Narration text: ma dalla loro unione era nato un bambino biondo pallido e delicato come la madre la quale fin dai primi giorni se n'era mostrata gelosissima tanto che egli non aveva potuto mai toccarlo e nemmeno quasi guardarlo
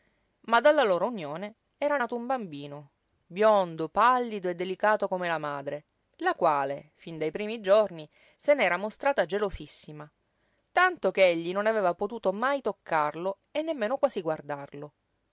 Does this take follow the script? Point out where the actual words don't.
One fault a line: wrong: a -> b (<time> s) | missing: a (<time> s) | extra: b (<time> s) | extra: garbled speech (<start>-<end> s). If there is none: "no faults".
no faults